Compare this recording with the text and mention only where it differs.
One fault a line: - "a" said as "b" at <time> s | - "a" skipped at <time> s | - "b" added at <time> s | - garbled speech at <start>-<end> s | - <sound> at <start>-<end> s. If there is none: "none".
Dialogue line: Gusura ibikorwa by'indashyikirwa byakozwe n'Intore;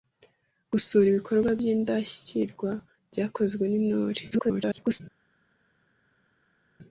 - garbled speech at 4.3-5.0 s